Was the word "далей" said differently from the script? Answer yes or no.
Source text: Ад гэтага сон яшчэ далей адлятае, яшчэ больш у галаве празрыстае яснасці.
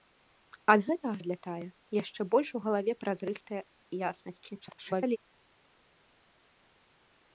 yes